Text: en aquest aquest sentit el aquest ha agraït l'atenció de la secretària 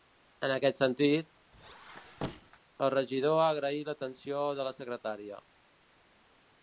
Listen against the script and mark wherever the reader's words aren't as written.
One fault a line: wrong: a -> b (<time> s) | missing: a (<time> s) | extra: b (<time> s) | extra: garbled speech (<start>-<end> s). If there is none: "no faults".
missing: aquest (0.8 s)
wrong: aquest -> regidor (2.9 s)